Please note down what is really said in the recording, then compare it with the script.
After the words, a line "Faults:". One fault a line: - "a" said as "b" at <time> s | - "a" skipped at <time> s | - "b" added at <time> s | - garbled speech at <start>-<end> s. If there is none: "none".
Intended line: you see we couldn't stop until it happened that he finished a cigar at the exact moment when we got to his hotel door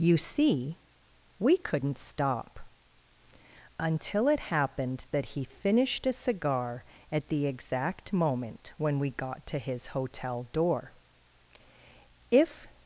you see we couldn't stop until it happened that he finished a cigar at the exact moment when we got to his hotel door if
Faults:
- "if" added at 12.3 s